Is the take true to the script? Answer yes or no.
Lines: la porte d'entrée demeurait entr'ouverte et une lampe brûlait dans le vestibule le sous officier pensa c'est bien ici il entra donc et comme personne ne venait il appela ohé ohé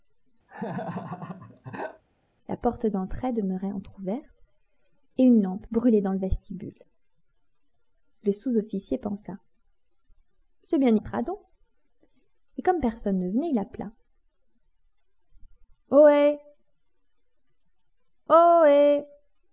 no